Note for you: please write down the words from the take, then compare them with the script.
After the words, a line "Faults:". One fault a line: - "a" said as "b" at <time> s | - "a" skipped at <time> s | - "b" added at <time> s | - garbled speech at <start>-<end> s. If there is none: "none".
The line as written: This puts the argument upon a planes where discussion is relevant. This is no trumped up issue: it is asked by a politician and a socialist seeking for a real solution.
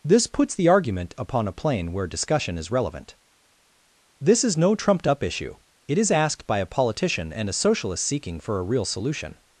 This puts the argument upon a plane where discussion is relevant. This is no trumped up issue: it is asked by a politician and a socialist seeking for a real solution.
Faults:
- "planes" said as "plane" at 1.5 s